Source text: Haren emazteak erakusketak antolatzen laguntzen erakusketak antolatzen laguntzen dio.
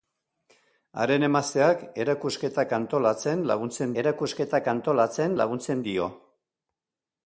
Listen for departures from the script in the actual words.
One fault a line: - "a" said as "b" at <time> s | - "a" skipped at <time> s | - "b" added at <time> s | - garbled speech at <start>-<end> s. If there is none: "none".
none